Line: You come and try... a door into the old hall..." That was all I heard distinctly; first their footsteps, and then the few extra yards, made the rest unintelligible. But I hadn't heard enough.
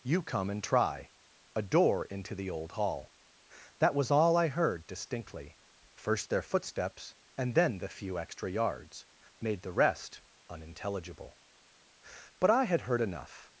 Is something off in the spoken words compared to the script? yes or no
yes